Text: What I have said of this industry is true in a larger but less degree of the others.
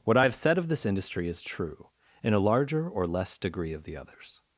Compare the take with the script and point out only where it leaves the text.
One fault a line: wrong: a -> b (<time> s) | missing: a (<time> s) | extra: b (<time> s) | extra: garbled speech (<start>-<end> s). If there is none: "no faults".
wrong: but -> or (2.9 s)